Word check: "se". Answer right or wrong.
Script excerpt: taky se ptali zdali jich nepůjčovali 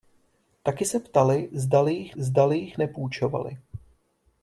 right